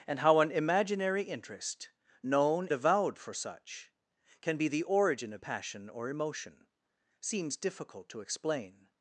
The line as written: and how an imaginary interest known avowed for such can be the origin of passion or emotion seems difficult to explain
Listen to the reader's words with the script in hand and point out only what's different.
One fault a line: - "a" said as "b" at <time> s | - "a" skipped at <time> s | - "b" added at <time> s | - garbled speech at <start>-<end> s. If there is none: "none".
none